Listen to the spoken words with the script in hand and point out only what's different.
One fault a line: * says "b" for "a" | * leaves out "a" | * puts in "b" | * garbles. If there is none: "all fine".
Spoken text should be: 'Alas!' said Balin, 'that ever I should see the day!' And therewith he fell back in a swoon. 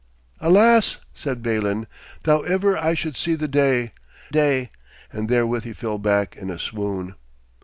* puts in "day"